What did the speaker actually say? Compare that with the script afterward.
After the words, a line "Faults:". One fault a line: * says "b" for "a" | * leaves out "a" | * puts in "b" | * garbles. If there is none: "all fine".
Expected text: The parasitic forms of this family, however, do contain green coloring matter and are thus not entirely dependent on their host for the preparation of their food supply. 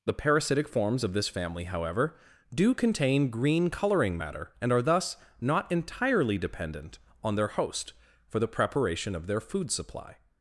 The parasitic forms of this family, however, do contain green coloring matter and are thus not entirely dependent on their host for the preparation of their food supply.
Faults:
all fine